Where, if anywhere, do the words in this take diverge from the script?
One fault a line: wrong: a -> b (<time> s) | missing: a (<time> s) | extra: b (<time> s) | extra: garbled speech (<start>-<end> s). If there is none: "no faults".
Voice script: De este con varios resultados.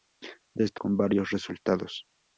no faults